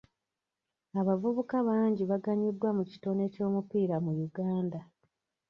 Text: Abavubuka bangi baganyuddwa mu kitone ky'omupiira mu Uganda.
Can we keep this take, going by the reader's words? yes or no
yes